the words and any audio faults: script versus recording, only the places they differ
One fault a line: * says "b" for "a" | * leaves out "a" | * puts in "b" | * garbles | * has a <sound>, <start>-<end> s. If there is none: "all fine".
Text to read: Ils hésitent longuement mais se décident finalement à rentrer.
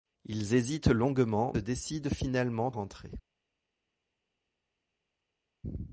* leaves out "mais se"
* leaves out "à"